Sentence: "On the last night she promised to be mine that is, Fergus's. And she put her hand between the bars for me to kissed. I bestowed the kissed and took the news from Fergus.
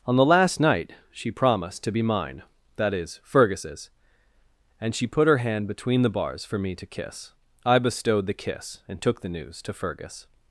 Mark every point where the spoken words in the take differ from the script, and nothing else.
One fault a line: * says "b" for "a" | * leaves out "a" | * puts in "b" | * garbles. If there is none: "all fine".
* says "kiss" for "kissed"
* says "kiss" for "kissed"
* says "to" for "from"